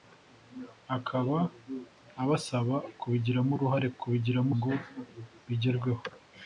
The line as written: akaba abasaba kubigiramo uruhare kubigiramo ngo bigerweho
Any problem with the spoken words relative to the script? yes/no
no